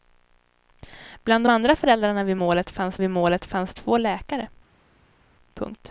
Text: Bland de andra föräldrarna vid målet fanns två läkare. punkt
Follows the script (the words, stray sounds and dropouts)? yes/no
no